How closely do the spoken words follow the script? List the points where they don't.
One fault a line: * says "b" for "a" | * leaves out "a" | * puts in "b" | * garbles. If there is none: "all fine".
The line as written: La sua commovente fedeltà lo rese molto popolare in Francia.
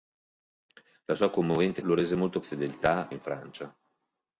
* leaves out "fedeltà"
* says "fedeltà" for "popolare"